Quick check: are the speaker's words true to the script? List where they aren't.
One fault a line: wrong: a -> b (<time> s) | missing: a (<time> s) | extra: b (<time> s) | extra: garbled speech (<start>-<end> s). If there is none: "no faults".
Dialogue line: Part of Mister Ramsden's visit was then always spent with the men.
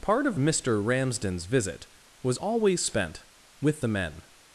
missing: then (2.4 s)